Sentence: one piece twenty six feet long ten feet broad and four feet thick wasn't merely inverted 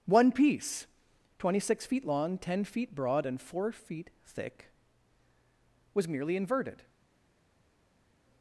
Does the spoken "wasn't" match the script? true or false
false